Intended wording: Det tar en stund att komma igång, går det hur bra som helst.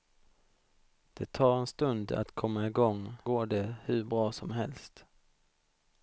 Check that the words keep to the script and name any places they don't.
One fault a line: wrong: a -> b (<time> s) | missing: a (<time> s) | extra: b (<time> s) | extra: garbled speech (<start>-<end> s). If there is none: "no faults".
no faults